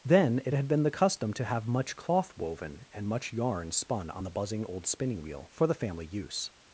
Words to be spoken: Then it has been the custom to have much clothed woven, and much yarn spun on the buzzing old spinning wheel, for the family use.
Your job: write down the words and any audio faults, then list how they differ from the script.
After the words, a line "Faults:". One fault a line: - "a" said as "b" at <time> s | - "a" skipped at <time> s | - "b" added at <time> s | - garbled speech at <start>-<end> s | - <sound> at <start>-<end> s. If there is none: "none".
Then it had been the custom to have much cloth woven, and much yarn spun on the buzzing old spinning wheel, for the family use.
Faults:
- "has" said as "had" at 0.5 s
- "clothed" said as "cloth" at 2.0 s